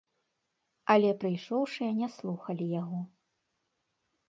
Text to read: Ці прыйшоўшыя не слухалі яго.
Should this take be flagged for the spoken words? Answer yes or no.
yes